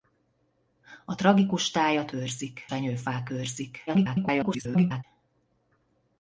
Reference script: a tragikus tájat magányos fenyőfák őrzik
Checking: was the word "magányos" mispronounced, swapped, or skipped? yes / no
yes